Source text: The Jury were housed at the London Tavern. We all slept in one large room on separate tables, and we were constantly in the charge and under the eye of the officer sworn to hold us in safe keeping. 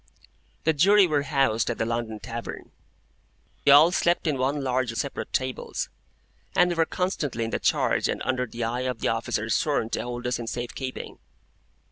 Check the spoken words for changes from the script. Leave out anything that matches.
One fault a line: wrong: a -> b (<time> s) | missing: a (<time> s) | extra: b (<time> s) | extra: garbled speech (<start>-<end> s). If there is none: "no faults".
missing: We (2.7 s)
missing: room on (4.9 s)